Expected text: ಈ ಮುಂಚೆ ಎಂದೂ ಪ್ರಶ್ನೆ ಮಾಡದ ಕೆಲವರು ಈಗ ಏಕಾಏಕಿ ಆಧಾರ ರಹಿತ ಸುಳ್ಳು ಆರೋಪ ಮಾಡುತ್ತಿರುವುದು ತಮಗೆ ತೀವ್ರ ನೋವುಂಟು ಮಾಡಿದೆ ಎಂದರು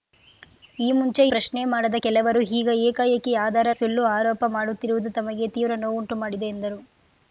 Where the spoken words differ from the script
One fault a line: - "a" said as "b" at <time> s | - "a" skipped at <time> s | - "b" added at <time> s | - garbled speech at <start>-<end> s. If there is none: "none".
- "ಎಂದೂ" skipped at 1.2 s
- "ರಹಿತ" skipped at 3.7 s